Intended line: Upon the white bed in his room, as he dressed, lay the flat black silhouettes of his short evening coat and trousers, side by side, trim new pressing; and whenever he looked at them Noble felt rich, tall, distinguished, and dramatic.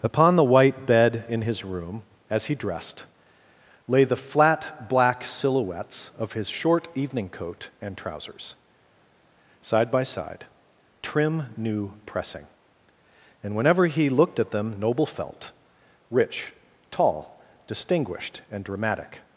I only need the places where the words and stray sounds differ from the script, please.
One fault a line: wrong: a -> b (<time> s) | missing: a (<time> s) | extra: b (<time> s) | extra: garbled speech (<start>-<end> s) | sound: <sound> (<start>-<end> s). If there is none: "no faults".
no faults